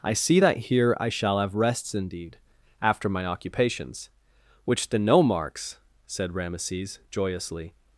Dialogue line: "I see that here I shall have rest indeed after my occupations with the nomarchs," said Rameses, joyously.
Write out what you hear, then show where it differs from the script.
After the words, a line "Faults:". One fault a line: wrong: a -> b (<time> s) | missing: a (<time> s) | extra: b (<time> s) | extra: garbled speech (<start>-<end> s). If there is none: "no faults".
"I see that here I shall have rests indeed after my occupations which the nomarchs," said Rameses, joyously.
Faults:
wrong: rest -> rests (1.5 s)
wrong: with -> which (4.6 s)